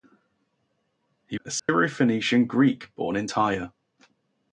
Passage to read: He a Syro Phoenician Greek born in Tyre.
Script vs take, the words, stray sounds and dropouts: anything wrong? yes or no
yes